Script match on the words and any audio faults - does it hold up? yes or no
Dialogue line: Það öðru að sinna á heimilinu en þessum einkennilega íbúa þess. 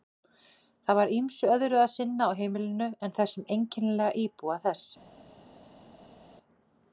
no